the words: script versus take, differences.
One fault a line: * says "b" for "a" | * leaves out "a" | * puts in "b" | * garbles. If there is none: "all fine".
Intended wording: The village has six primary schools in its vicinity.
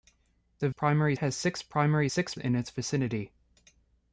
* says "primary" for "village"
* says "six" for "schools"